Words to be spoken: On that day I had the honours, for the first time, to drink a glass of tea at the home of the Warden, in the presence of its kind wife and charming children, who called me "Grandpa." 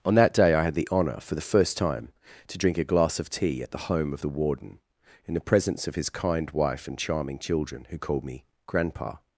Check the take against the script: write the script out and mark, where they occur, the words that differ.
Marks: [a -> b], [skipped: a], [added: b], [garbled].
On that day I had the [honours, -> honour] for the first time, to drink a glass of tea at the home of the Warden, in the presence of [its -> his] kind wife and charming children, who called me "Grandpa."